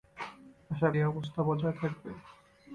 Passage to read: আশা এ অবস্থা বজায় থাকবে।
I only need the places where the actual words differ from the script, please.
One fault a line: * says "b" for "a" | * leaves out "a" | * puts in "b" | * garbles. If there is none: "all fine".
all fine